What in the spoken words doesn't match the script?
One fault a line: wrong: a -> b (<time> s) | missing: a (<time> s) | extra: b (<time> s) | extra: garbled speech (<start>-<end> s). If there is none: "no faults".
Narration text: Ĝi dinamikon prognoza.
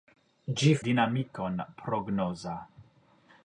no faults